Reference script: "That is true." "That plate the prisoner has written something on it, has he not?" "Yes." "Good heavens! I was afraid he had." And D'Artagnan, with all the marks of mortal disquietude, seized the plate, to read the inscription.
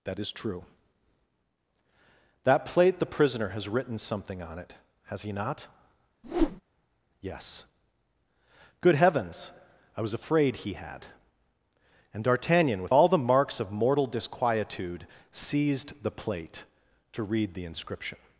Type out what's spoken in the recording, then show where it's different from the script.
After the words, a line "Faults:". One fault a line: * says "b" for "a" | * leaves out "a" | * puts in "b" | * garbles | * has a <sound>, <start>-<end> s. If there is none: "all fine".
"That is true." "That plate the prisoner has written something on it, has he not?" "Yes." "Good heavens! I was afraid he had." And D'Artagnan, with all the marks of mortal disquietude, seized the plate, to read the inscription.
Faults:
* has a whoosh, 6.2-6.6 s